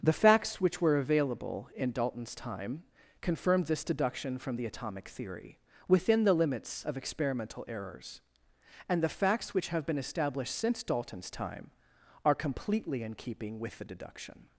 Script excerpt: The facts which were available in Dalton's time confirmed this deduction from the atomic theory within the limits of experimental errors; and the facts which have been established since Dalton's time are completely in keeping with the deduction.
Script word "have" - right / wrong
right